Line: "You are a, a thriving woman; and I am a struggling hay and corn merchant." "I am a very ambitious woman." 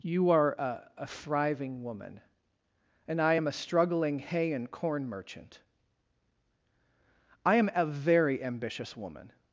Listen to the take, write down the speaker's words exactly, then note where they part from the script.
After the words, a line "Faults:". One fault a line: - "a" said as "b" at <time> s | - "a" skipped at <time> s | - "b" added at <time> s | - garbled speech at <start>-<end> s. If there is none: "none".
"You are a, a thriving woman; and I am a struggling hay and corn merchant." "I am a very ambitious woman."
Faults:
none